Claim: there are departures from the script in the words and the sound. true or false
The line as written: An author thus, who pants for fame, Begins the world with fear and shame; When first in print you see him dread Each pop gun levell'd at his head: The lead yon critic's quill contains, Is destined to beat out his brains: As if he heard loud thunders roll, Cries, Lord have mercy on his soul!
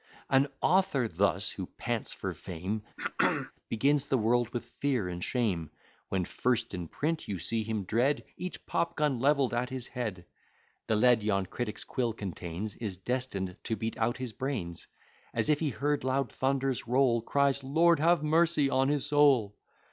true